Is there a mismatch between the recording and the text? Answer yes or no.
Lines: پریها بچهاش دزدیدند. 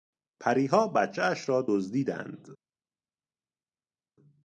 yes